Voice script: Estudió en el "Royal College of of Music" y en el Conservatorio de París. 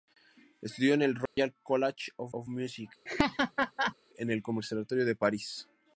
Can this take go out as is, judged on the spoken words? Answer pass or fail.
pass